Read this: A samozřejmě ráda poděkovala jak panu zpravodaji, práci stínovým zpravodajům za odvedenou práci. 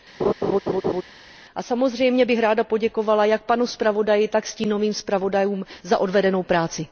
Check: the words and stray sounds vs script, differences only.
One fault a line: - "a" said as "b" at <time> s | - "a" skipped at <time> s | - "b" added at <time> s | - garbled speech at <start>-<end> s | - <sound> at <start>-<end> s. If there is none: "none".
- laugh at 0.2-1.0 s
- "bych" added at 2.2 s
- "práci" said as "tak" at 4.3 s